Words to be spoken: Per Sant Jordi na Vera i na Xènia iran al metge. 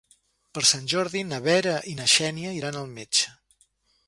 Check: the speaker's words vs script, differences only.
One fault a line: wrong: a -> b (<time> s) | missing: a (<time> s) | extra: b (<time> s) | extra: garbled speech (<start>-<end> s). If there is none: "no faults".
no faults